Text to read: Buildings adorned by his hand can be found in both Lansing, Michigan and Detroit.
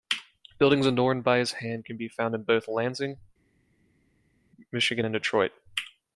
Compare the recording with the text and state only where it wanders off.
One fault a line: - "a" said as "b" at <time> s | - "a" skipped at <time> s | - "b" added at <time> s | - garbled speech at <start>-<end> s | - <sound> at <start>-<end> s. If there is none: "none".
none